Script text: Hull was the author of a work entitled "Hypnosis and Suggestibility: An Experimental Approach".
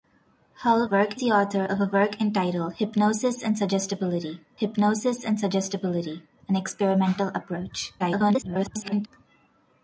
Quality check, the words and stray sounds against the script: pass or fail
fail